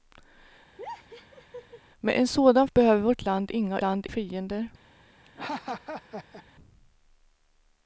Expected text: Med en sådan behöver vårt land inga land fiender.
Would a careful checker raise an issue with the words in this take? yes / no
no